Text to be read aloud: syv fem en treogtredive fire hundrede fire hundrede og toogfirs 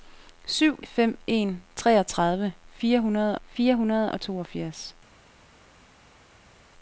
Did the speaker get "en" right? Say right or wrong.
right